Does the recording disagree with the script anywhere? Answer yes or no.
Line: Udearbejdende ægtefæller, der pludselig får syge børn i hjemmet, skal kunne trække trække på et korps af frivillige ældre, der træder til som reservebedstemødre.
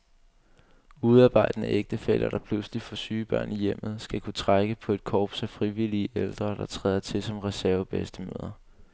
yes